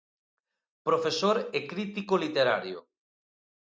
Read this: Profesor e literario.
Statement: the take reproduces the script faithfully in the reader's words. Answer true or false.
false